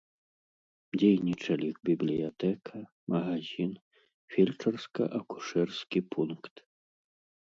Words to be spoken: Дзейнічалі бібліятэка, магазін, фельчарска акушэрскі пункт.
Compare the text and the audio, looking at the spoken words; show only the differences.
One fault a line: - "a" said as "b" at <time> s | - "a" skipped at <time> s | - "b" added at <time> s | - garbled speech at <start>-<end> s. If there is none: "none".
none